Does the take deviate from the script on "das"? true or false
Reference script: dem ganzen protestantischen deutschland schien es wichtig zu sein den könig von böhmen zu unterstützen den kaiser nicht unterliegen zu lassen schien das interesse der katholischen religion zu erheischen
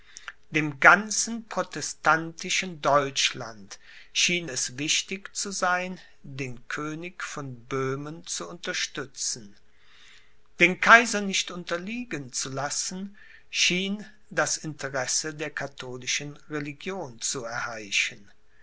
false